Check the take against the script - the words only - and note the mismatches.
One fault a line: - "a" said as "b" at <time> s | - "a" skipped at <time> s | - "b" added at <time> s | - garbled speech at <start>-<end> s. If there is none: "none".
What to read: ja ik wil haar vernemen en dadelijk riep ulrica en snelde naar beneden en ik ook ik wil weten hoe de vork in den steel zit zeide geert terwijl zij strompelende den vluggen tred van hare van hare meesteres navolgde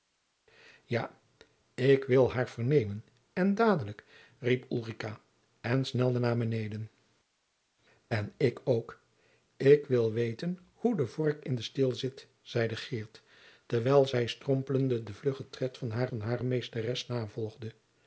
none